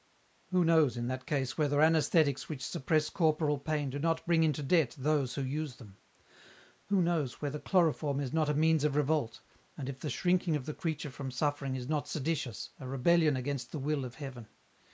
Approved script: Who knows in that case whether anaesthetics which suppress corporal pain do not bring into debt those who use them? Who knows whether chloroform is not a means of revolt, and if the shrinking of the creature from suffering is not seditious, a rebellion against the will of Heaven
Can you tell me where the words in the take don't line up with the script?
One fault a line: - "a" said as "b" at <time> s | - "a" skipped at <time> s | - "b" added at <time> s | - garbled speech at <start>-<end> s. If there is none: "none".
none